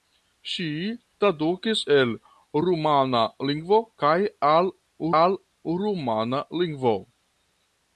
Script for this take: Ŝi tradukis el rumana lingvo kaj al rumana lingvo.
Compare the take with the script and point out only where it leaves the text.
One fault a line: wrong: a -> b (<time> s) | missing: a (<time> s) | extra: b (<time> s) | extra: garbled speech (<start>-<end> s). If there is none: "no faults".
extra: al (5.2 s)